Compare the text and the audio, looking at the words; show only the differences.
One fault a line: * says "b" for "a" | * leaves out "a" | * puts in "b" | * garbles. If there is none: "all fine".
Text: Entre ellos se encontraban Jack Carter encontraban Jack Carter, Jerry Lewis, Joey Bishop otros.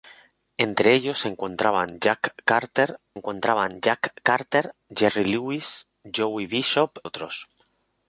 all fine